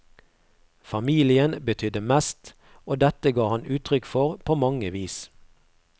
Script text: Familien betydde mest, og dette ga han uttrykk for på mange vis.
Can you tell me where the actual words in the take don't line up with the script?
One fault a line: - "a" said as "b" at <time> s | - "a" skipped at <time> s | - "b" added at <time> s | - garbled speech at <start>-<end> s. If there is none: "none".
none